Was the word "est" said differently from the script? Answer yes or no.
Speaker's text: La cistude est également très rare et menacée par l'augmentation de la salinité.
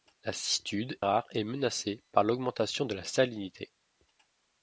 yes